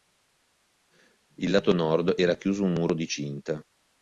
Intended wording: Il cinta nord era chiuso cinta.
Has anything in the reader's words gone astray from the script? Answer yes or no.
yes